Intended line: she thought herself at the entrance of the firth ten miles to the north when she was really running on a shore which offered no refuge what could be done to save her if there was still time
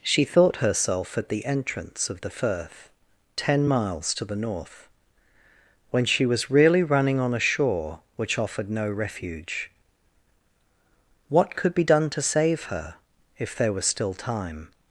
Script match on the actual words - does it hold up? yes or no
yes